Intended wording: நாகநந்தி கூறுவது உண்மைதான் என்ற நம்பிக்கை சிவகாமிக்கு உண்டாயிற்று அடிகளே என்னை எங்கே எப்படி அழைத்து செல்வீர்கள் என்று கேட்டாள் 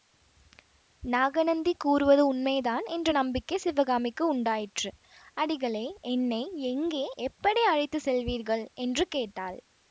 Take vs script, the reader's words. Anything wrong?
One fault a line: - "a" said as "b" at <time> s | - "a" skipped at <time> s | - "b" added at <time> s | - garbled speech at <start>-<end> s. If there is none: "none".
none